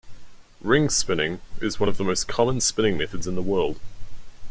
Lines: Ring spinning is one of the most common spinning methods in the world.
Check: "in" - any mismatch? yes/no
no